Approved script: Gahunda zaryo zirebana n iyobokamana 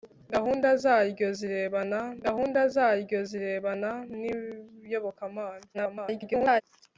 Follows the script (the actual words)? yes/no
no